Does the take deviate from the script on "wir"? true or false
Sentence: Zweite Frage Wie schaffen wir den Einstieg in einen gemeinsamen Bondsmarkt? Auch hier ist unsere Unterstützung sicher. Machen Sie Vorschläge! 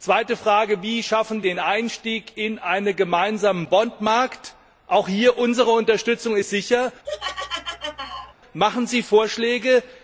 true